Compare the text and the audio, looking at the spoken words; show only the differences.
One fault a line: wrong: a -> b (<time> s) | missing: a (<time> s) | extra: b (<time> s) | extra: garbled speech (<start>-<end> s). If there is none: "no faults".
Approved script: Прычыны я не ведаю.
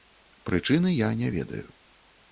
no faults